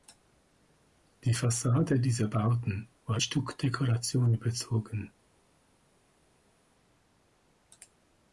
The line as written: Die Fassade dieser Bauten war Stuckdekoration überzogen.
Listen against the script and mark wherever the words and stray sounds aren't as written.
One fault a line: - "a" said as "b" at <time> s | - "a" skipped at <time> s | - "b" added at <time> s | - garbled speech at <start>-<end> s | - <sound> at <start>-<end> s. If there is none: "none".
none